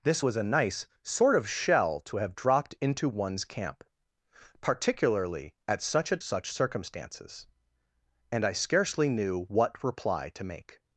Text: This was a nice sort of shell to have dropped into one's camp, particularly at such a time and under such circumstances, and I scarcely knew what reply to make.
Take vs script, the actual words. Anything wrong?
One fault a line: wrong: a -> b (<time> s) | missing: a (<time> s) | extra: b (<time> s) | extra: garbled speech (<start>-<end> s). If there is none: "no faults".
missing: time and under (6.2 s)